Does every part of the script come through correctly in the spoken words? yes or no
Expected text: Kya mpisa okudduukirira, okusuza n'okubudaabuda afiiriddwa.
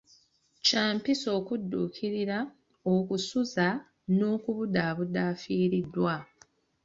yes